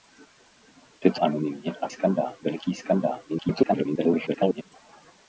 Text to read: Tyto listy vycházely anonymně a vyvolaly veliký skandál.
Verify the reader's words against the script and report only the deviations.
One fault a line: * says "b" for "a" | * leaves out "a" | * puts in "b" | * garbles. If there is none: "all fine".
* leaves out "listy vycházely"
* says "skandál" for "vyvolaly"
* garbles